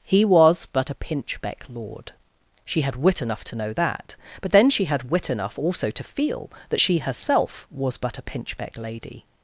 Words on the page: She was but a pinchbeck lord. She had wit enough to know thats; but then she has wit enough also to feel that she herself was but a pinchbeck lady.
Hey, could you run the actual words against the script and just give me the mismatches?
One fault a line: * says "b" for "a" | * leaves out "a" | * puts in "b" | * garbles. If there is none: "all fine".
* says "He" for "She"
* says "that" for "thats"
* says "had" for "has"